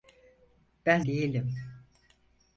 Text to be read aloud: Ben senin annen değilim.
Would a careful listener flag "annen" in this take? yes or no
yes